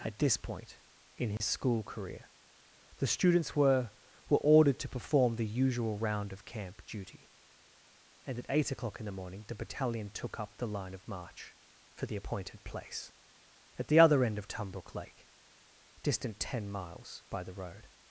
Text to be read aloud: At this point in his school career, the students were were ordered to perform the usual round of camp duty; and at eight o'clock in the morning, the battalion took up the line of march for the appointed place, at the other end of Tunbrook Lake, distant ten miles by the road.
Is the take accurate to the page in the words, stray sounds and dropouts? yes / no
no